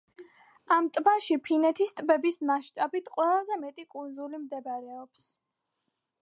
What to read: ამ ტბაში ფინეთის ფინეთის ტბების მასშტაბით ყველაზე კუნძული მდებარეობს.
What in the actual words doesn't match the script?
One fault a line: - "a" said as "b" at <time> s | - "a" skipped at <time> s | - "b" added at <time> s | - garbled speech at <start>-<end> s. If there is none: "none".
- "ფინეთის" skipped at 1.9 s
- "მეტი" added at 3.7 s